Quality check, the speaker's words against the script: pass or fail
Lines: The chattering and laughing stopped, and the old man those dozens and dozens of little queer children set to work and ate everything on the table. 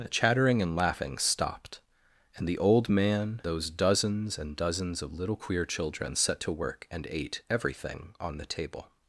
pass